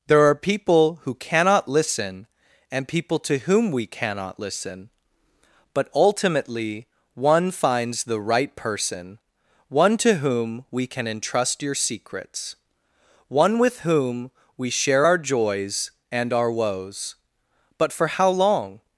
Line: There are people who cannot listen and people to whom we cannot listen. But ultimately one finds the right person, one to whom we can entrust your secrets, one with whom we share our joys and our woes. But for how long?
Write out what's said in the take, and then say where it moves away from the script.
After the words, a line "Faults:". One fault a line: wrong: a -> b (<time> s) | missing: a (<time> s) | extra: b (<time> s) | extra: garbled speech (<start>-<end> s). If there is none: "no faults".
There are people who cannot listen and people to whom we cannot listen. But ultimately one finds the right person, one to whom we can entrust your secrets, one with whom we share our joys and our woes. But for how long?
Faults:
no faults